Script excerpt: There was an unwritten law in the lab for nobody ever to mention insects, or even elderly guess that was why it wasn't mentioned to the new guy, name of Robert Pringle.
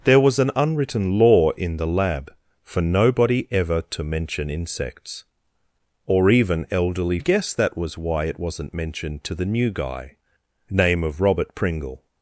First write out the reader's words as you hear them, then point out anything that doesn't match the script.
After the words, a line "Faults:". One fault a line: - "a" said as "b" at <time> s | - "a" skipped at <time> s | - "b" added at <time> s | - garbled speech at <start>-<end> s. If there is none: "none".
There was an unwritten law in the lab for nobody ever to mention insects, or even elderly guess that was why it wasn't mentioned to the new guy, name of Robert Pringle.
Faults:
none